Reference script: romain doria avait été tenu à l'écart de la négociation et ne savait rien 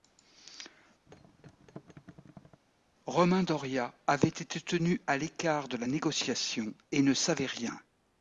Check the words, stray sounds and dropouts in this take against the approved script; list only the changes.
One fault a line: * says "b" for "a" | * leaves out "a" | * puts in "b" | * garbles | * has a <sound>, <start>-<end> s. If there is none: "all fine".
* has a thud, 1.1-2.6 s